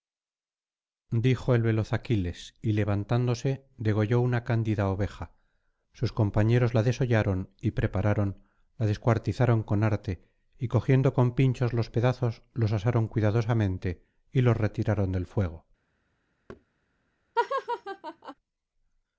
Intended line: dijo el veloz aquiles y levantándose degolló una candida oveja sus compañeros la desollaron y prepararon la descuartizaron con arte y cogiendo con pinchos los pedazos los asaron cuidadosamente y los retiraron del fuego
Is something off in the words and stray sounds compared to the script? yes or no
yes